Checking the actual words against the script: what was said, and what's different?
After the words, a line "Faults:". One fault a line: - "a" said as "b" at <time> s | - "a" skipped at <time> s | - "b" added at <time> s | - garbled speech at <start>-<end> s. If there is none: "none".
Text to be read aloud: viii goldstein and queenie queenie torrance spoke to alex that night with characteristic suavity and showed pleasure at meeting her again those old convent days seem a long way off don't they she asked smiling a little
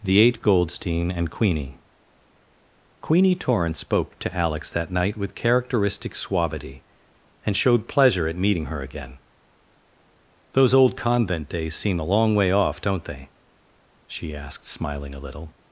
the eight goldstein and queenie queenie torrance spoke to alex that night with characteristic suavity and showed pleasure at meeting her again those old convent days seem a long way off don't they she asked smiling a little
Faults:
- "viii" said as "the eight" at 0.0 s